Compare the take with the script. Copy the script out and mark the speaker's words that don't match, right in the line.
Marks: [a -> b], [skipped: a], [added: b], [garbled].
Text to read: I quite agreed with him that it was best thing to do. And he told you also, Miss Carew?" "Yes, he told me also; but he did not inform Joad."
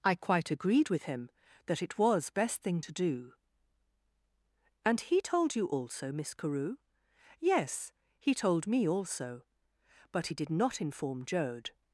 I quite agreed with him that it was best thing to do. And he told you also, Miss Carew?" "Yes, he told me also; but he did not inform Joad."